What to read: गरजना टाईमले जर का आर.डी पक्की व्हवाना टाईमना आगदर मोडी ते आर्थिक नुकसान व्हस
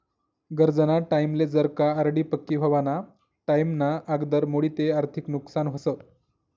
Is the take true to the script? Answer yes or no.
yes